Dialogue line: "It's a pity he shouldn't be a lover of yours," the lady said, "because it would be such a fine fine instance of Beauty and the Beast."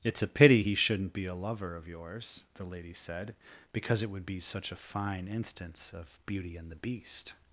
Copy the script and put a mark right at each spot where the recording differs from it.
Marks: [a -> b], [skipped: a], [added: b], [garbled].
"It's a pity he shouldn't be a lover of yours," the lady said, "because it would be such a fine [skipped: fine] instance of Beauty and the Beast."